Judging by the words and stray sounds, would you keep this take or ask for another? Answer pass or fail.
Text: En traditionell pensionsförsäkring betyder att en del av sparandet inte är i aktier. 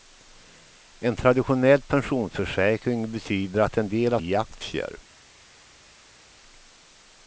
fail